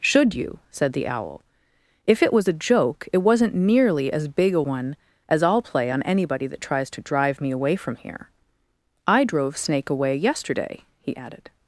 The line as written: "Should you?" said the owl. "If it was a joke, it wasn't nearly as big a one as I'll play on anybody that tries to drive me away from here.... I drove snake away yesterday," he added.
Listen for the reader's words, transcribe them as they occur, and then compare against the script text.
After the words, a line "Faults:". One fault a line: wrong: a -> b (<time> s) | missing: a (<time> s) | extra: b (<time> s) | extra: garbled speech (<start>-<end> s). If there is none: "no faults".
"Should you?" said the owl. "If it was a joke, it wasn't nearly as big a one as I'll play on anybody that tries to drive me away from here.... I drove snake away yesterday," he added.
Faults:
no faults